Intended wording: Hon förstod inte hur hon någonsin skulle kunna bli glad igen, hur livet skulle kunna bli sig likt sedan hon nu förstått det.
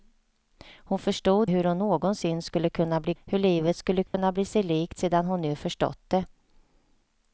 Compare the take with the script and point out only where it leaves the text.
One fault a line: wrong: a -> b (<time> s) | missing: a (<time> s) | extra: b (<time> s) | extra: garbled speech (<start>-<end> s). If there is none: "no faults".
missing: inte (1.5 s)
missing: glad igen (3.1 s)